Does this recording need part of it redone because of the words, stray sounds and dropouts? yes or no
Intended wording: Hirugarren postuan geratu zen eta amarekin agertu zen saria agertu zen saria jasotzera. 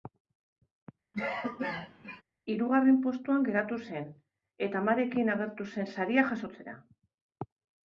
yes